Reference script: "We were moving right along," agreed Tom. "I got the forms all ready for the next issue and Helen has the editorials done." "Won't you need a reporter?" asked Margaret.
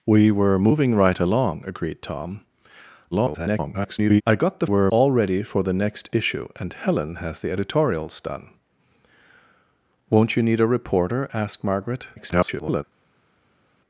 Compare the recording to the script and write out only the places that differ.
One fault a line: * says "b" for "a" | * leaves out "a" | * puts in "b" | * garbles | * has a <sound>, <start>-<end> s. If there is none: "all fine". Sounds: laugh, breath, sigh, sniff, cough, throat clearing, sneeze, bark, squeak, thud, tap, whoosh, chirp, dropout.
* garbles
* says "were" for "forms"
* garbles